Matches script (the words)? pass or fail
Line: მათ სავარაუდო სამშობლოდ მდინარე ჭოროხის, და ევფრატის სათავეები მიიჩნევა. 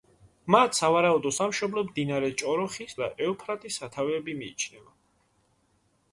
pass